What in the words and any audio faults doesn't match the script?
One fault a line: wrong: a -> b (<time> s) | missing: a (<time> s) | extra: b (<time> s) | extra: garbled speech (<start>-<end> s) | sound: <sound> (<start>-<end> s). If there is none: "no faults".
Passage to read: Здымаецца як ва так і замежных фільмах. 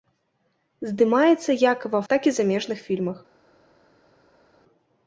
no faults